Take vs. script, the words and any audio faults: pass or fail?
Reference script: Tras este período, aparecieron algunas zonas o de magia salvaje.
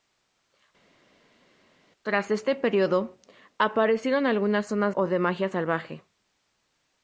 pass